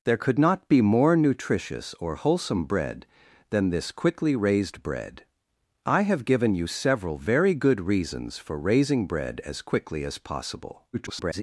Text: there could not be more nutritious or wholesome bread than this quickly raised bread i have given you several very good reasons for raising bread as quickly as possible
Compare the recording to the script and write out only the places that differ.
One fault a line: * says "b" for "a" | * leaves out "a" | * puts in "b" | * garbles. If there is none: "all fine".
* garbles